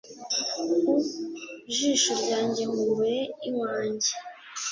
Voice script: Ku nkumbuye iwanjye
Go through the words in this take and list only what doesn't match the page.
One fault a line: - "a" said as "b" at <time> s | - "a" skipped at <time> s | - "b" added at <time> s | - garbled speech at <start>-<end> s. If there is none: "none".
- "jisho ryanjye" added at 1.7 s